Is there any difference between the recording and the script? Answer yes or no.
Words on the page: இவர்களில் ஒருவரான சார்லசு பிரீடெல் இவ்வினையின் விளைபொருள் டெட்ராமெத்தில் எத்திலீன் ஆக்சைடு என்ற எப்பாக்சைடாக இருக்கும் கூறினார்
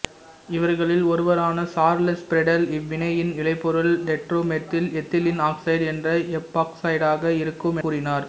no